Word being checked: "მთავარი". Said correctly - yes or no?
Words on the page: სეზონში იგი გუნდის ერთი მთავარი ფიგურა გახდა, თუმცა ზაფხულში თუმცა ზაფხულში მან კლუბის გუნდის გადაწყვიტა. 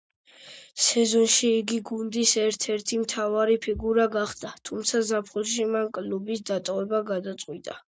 yes